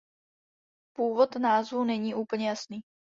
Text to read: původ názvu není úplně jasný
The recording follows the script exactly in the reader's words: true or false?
true